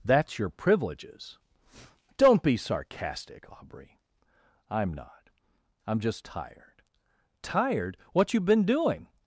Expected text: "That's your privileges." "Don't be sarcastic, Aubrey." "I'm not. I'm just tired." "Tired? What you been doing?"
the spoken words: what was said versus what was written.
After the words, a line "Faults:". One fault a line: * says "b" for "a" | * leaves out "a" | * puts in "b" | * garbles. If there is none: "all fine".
"That's your privileges." "Don't be sarcastic, Aubrey." "I'm not. I'm just tired." "Tired? What you been doing?"
Faults:
all fine